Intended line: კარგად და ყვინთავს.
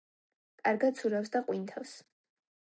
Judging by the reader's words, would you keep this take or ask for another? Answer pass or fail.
fail